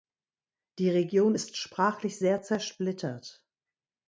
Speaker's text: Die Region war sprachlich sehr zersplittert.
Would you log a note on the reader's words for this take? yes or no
yes